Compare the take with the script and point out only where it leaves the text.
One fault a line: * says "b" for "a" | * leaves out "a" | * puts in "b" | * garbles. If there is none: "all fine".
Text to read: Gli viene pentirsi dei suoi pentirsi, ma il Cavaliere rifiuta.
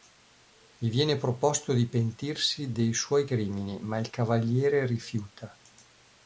* puts in "proposto di"
* says "crimini" for "pentirsi"